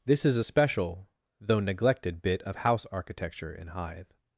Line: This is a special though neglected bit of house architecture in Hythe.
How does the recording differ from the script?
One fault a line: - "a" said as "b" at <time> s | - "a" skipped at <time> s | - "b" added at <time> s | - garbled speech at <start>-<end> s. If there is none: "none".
none